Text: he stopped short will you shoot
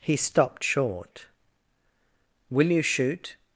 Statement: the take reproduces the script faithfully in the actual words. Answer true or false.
true